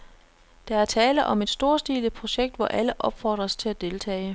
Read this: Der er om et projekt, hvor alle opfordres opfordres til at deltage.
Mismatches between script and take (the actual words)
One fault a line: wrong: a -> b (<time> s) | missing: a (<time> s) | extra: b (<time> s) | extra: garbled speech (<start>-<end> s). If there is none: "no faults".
extra: tale (0.8 s)
extra: storstilet (1.5 s)
missing: opfordres (3.5 s)